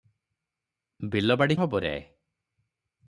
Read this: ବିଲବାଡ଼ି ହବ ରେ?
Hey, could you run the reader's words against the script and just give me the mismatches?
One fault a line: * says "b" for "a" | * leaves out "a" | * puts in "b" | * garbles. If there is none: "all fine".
all fine